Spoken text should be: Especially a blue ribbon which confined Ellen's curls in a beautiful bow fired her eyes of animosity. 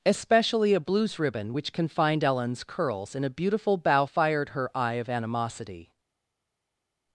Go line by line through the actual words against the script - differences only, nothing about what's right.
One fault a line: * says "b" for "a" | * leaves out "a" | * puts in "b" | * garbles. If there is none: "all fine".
* says "blues" for "blue"
* says "eye" for "eyes"